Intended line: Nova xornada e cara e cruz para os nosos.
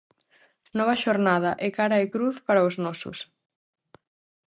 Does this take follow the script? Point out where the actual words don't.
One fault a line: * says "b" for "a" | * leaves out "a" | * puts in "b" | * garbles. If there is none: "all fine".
all fine